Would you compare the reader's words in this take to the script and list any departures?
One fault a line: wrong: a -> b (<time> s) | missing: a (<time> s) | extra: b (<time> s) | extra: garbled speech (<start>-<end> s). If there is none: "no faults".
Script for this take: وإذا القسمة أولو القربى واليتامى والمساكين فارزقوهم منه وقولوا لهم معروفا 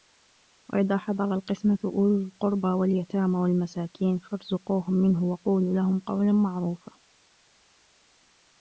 extra: حضر (1.0 s)
extra: قولا (6.0 s)